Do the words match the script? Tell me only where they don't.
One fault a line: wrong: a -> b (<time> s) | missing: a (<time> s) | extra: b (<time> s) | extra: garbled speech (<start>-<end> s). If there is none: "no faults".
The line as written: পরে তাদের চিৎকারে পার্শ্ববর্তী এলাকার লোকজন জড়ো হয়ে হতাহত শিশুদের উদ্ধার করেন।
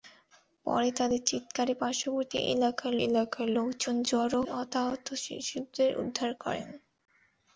extra: এলাকার (3.1 s)
missing: হয়ে (4.4 s)